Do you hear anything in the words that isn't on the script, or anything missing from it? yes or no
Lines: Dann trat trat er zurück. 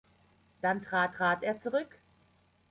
no